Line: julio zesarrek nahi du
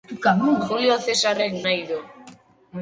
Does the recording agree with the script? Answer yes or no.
yes